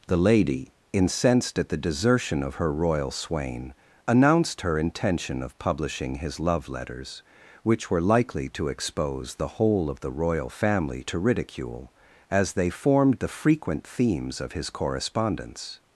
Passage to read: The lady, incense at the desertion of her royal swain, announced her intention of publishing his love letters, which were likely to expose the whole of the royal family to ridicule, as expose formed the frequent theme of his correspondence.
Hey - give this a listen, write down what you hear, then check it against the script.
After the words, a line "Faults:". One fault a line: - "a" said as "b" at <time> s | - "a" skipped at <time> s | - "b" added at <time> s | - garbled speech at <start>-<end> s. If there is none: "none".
The lady, incensed at the desertion of her royal swain, announced her intention of publishing his love letters, which were likely to expose the whole of the royal family to ridicule, as they formed the frequent themes of his correspondence.
Faults:
- "incense" said as "incensed" at 0.9 s
- "expose" said as "they" at 12.5 s
- "theme" said as "themes" at 13.8 s